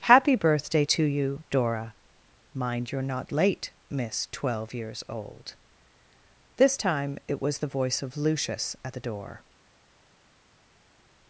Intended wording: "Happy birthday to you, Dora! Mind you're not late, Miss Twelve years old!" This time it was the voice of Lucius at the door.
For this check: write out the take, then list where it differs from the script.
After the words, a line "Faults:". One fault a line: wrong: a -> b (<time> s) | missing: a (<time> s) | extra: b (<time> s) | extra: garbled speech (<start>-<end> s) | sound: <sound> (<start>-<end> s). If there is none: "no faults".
"Happy birthday to you, Dora! Mind you're not late, Miss Twelve years old!" This time it was the voice of Lucius at the door.
Faults:
no faults